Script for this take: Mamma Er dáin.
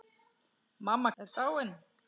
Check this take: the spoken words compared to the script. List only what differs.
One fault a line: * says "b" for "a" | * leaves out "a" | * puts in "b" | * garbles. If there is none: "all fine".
all fine